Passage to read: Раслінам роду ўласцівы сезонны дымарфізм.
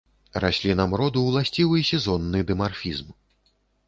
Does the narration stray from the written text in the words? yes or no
no